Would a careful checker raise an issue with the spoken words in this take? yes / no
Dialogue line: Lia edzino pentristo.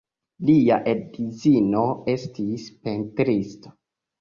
yes